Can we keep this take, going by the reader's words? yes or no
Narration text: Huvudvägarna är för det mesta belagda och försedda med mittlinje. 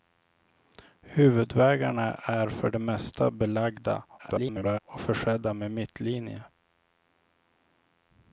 no